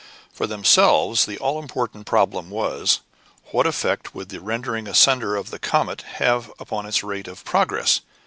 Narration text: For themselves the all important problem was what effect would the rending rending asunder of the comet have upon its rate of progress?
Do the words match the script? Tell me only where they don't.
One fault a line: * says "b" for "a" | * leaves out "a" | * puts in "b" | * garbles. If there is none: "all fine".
* leaves out "rending"